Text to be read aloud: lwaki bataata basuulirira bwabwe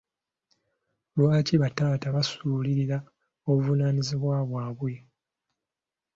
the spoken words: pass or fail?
fail